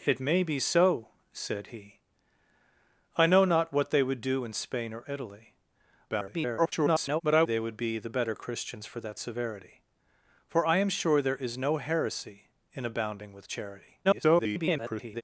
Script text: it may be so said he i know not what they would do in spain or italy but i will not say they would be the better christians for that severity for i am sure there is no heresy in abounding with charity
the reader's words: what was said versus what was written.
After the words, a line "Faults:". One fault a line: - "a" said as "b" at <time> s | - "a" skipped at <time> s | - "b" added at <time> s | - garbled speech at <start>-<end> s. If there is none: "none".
it may be so said he i know not what they would do in spain or italy [garbled] but i they would be the better christians for that severity for i am sure there is no heresy in abounding with charity [garbled]
Faults:
- garbled speech at 6.1-7.2 s
- "will not say" skipped at 7.4 s
- garbled speech at 14.0-15.2 s